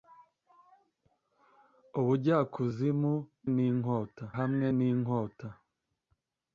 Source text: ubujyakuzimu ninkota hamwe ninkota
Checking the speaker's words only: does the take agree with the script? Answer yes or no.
yes